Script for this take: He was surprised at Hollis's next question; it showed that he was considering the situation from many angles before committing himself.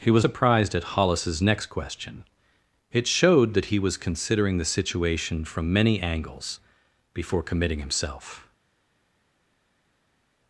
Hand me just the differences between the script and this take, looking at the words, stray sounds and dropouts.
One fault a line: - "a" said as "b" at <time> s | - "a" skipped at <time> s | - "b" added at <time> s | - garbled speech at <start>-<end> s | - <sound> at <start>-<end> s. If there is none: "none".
none